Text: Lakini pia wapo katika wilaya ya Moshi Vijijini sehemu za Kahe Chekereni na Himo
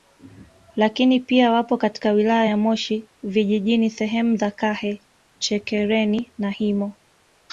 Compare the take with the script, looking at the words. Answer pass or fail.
pass